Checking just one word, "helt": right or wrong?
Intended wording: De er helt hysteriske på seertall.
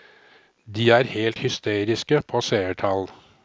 right